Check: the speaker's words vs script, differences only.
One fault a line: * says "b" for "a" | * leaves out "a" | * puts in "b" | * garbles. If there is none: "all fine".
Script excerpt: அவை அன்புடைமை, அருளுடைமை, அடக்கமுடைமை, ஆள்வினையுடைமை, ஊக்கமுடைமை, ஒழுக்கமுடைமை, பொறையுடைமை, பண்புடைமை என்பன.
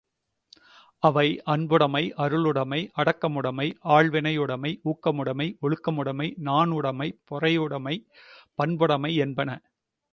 * puts in "நாணுடைமை"